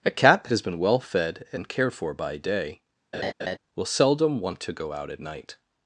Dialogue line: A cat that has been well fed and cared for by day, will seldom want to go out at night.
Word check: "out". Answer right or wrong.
right